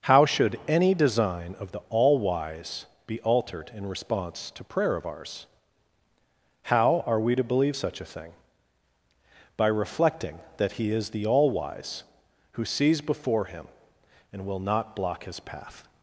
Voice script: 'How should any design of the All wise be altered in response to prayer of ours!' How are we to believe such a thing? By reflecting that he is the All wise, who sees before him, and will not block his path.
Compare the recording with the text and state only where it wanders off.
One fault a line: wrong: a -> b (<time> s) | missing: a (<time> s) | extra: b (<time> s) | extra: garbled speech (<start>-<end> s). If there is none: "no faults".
no faults